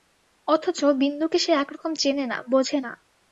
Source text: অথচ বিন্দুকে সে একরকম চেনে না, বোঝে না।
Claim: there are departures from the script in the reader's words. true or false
false